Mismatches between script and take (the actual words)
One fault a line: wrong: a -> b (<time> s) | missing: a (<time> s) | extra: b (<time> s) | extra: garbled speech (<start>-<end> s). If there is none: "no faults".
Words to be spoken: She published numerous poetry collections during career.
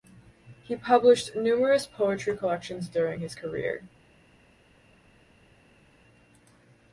wrong: She -> He (0.6 s)
extra: his (3.2 s)